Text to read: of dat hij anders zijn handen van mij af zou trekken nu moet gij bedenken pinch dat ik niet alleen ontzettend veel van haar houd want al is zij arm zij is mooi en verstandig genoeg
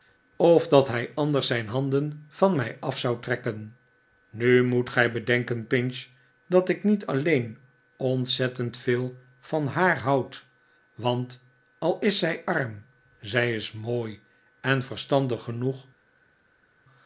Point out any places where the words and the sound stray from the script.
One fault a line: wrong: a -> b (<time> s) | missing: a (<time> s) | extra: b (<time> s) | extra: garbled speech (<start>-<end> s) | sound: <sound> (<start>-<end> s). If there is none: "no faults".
no faults